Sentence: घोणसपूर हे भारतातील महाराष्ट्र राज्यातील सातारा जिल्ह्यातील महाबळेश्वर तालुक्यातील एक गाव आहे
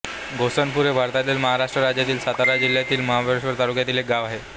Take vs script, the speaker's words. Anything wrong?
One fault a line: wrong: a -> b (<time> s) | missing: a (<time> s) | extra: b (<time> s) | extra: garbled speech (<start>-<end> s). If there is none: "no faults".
no faults